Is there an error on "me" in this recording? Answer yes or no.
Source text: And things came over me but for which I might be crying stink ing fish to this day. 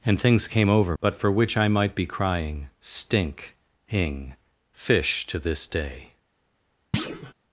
yes